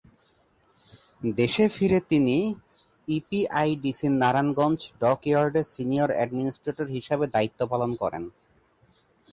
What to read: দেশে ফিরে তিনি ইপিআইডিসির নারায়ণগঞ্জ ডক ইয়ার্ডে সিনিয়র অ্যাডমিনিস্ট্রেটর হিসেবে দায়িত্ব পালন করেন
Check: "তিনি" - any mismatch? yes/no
no